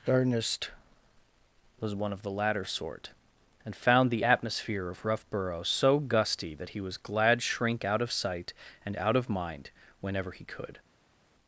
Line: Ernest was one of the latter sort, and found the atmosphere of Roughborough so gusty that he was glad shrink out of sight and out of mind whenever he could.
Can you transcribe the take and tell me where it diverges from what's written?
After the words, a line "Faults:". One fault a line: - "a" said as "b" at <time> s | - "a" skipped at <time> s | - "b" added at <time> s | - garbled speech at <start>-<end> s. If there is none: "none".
Ernest was one of the latter sort, and found the atmosphere of Roughborough so gusty that he was glad shrink out of sight and out of mind whenever he could.
Faults:
none